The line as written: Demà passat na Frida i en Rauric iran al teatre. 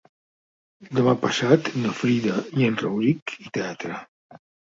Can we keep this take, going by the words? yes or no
no